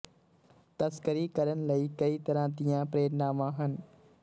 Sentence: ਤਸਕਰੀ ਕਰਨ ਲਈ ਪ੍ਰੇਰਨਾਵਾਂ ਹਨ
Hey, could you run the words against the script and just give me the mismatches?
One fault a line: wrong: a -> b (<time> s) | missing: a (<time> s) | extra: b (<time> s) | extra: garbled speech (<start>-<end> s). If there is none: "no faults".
extra: ਕਈ ਤਰ੍ਹਾਂ ਦੀਆਂ (2.0 s)